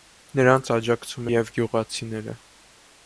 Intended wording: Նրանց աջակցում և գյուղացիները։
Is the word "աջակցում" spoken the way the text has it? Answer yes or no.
yes